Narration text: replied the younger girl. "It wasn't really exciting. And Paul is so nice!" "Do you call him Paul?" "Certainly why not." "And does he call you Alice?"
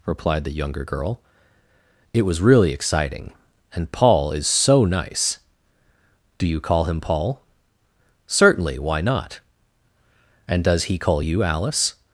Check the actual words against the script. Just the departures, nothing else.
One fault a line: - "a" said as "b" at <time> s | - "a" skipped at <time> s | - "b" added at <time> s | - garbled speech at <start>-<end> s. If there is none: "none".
- "wasn't" said as "was" at 2.2 s